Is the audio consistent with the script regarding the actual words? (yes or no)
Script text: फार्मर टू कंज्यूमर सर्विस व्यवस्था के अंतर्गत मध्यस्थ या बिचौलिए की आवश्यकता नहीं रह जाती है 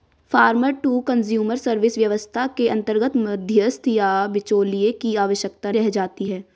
no